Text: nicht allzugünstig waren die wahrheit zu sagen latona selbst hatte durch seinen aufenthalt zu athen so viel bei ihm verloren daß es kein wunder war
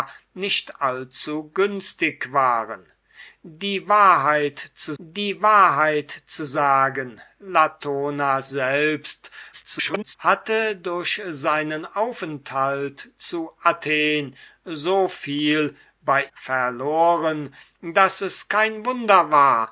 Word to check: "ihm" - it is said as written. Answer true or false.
false